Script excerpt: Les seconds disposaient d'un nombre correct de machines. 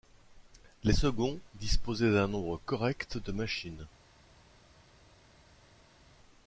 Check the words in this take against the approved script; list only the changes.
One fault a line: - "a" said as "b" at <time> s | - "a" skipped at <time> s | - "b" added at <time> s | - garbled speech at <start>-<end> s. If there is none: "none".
none